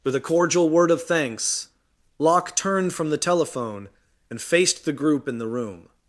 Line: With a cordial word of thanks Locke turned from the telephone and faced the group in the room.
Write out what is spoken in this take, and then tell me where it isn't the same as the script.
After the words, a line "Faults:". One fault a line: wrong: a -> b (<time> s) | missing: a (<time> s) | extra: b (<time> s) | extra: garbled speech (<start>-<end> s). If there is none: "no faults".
With a cordial word of thanks Locke turned from the telephone and faced the group in the room.
Faults:
no faults